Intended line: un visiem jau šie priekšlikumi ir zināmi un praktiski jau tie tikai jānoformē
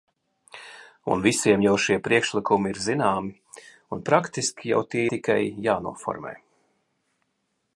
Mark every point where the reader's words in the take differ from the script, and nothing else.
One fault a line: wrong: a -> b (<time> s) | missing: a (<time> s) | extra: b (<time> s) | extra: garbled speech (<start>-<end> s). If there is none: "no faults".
no faults